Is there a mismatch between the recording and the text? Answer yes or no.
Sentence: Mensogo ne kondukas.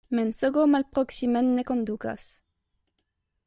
yes